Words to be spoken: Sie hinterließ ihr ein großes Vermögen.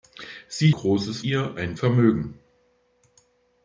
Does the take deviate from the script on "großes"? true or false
true